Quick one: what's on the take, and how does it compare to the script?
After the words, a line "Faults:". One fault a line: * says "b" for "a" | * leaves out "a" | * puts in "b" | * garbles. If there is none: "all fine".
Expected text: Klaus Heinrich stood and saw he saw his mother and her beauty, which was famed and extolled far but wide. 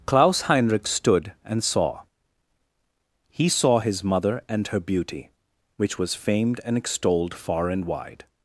Klaus Heinrich stood and saw he saw his mother and her beauty, which was famed and extolled far and wide.
Faults:
* says "and" for "but"